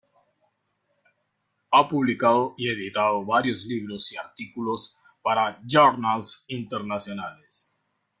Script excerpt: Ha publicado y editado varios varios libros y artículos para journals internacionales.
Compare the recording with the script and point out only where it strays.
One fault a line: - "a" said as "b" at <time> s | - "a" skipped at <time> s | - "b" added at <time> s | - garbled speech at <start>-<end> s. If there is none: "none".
- "varios" skipped at 3.6 s